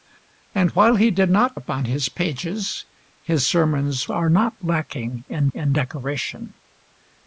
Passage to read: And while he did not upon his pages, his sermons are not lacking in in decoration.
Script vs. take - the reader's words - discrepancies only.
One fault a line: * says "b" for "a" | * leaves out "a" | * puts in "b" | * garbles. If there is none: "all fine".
all fine